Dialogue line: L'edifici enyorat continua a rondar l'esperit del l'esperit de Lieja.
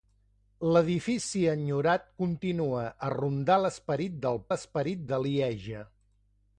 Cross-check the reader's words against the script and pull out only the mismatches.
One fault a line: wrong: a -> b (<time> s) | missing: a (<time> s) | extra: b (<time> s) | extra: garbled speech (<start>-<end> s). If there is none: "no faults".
no faults